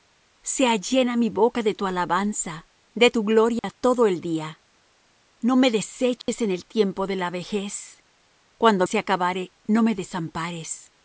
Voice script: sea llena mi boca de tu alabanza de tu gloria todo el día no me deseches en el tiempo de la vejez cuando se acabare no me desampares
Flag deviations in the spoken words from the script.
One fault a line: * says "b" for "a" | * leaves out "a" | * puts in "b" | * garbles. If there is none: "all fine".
all fine